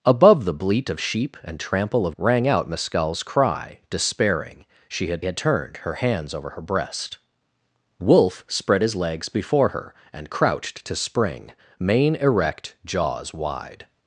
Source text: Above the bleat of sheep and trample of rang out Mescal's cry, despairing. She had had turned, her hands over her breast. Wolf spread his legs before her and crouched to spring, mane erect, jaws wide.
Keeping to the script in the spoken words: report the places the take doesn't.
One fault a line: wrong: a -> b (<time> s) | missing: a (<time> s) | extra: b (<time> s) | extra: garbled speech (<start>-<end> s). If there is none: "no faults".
no faults